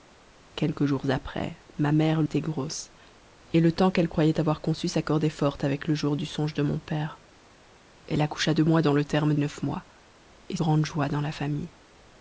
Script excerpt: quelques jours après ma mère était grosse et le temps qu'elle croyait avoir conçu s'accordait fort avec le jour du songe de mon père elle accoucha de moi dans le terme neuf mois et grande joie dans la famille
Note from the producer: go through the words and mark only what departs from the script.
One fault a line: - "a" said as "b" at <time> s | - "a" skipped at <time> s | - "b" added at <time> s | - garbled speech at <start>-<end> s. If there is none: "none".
none